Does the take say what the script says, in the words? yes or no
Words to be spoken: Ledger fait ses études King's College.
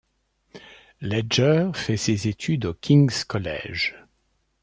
no